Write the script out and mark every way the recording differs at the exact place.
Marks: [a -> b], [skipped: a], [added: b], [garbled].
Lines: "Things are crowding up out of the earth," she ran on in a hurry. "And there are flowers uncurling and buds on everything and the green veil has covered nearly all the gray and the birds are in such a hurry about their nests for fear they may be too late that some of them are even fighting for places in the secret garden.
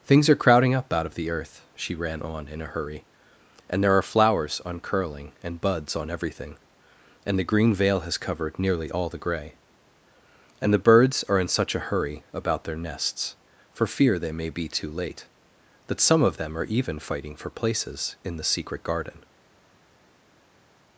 "Things are crowding up out of the earth," she ran on in a hurry. "And there are flowers uncurling and buds on everything and the green veil has covered nearly all the gray and the birds are in such a hurry about their nests for fear they may be too late that some of them are even fighting for places in the secret garden.